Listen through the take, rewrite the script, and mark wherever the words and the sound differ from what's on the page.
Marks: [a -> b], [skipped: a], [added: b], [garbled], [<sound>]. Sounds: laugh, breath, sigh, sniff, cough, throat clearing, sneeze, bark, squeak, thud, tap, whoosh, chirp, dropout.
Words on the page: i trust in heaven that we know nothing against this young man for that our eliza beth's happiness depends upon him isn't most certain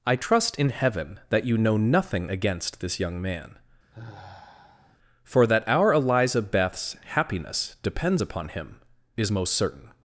i trust in heaven that [we -> you] know nothing against this young man [sigh] for that our eliza beth's happiness depends upon him [isn't -> is] most certain